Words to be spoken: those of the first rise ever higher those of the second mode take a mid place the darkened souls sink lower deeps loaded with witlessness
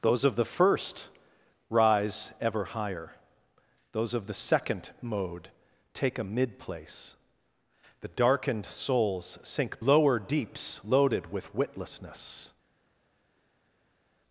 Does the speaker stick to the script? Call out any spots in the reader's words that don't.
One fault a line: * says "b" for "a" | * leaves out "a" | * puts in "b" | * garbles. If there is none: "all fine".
all fine